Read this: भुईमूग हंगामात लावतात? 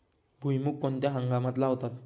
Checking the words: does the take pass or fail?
fail